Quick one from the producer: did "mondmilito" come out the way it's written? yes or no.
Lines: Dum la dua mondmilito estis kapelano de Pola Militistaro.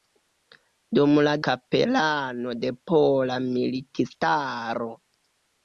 no